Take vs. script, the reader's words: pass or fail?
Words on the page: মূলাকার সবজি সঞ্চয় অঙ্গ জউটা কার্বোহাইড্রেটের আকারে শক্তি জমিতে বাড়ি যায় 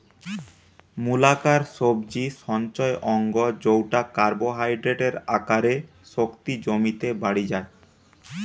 pass